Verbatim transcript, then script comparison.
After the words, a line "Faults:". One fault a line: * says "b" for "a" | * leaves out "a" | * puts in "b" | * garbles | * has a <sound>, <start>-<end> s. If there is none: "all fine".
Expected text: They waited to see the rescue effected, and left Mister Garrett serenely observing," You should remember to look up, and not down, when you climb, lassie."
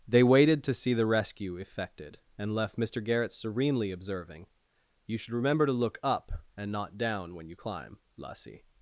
They waited to see the rescue effected, and left Mister Garrett serenely observing," You should remember to look up, and not down, when you climb, lassie."
Faults:
all fine